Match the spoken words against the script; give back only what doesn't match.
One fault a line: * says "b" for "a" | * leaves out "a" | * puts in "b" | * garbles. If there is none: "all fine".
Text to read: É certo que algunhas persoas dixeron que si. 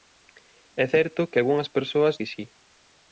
* leaves out "dixeron"